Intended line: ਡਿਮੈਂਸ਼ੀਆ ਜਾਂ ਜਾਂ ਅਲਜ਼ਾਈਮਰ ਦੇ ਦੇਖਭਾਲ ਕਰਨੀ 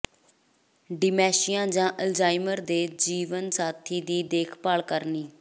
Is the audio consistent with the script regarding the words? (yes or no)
no